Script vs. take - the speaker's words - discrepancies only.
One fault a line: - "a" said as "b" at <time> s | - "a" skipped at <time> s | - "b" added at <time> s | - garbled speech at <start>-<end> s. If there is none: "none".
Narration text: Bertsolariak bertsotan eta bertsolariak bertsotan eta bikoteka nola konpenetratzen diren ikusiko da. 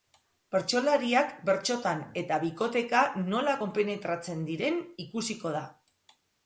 - "bertsolariak bertsotan eta" skipped at 2.4 s